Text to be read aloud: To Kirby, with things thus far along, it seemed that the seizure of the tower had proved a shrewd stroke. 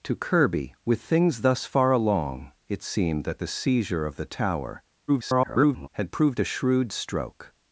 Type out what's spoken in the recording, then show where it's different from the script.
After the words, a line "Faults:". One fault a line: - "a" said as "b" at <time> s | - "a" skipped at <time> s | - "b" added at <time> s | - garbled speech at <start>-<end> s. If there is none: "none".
To Kirby, with things thus far along, it seemed that the seizure of the tower [garbled] had proved a shrewd stroke.
Faults:
- garbled speech at 5.1-5.9 s